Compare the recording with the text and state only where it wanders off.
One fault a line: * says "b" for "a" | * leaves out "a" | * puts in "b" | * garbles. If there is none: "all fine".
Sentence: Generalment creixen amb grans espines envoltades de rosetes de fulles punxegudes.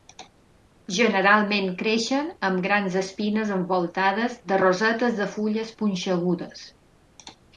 all fine